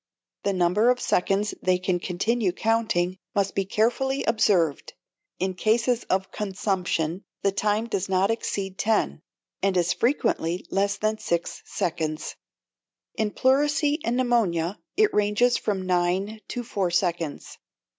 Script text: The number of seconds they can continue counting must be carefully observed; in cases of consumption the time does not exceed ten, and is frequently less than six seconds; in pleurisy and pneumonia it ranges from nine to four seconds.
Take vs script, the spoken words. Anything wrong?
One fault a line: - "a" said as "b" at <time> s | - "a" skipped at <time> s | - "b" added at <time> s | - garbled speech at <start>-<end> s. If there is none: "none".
none